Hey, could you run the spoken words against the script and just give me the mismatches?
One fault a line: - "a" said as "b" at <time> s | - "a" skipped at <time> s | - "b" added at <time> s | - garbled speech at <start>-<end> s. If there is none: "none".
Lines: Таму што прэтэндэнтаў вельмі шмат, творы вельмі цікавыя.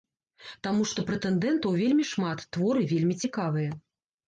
none